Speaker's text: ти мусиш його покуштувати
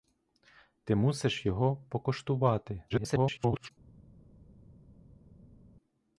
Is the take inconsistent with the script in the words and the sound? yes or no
yes